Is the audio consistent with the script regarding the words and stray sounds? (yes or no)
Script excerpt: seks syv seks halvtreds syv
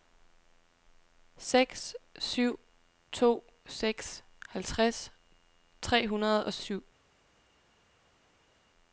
no